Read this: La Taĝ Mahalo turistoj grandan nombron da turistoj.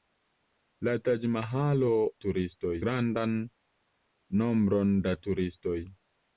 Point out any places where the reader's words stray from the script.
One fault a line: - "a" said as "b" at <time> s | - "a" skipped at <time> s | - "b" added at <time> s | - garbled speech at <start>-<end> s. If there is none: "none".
none